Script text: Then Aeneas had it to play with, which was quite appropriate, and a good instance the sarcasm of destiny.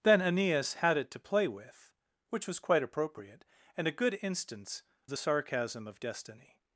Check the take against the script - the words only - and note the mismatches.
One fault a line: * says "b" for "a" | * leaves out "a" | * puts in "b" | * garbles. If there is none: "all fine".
all fine